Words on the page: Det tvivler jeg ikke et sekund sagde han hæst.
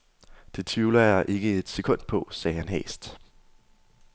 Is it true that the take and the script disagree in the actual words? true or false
true